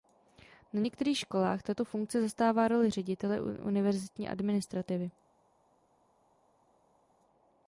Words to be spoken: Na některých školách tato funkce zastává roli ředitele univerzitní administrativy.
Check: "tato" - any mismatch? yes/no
no